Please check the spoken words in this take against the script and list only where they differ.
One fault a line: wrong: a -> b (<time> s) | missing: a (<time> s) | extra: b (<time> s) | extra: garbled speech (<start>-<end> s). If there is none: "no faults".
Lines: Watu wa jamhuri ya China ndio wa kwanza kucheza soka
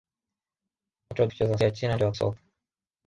wrong: jamhuri -> kucheza (1.3 s)
missing: kwanza kucheza (2.1 s)